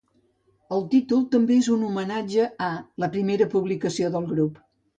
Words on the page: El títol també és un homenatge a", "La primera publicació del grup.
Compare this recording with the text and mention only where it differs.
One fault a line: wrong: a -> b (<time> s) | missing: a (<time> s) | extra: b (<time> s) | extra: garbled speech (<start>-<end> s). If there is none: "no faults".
no faults